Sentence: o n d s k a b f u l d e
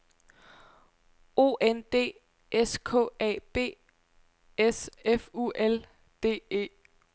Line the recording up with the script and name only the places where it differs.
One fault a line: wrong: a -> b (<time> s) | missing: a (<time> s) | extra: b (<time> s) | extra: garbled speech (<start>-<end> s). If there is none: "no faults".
extra: s (4.6 s)